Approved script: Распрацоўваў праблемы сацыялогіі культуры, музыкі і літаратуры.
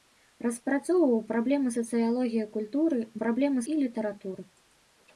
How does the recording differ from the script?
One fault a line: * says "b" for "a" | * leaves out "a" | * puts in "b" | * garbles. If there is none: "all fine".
* says "праблемы" for "музыкі"